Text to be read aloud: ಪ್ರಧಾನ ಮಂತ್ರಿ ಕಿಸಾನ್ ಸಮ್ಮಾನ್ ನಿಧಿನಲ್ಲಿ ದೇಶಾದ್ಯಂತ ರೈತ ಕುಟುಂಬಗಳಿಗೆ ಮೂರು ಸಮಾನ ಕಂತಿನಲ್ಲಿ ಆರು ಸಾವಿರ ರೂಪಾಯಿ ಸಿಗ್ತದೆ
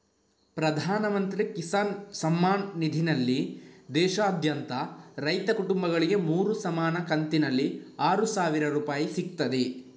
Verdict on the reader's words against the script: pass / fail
pass